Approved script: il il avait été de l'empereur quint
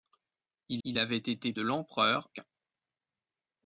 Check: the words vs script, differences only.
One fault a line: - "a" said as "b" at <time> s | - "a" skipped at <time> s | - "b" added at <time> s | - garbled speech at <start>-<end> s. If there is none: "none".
none